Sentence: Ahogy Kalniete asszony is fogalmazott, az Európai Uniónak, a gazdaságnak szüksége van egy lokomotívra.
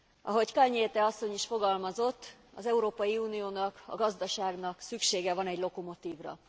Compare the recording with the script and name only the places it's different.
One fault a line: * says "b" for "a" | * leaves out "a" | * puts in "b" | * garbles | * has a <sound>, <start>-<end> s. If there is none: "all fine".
all fine